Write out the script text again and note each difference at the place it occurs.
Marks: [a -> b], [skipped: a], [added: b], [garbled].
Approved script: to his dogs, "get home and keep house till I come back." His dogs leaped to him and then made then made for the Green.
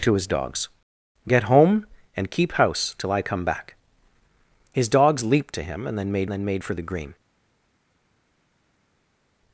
to his dogs, "get home and keep house till I come back." His dogs leaped to him and then made then made for the Green.